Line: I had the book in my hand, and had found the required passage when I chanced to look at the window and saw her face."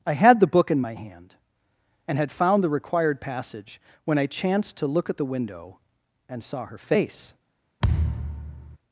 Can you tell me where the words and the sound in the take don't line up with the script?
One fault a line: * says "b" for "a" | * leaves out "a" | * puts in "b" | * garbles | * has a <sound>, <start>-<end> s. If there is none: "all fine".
* has a thud, 7.8-8.8 s